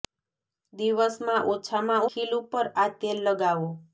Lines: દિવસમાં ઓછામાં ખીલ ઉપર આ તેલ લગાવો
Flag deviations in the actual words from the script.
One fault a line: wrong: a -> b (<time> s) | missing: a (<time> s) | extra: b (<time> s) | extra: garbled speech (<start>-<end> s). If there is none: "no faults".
no faults